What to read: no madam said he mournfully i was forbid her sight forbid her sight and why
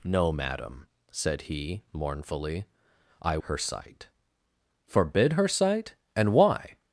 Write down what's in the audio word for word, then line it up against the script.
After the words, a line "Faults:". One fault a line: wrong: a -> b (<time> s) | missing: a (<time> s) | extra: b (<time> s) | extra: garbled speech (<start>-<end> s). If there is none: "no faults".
no madam said he mournfully i her sight forbid her sight and why
Faults:
missing: was forbid (3.4 s)